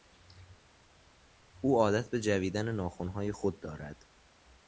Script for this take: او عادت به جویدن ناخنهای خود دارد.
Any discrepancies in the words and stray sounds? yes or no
no